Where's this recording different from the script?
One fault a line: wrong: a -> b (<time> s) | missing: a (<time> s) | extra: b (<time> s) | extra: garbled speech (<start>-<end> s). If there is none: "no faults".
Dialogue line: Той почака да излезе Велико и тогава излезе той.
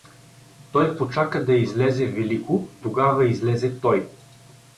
missing: и (2.7 s)